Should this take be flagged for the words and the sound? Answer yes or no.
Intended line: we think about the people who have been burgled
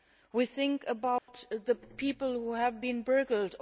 yes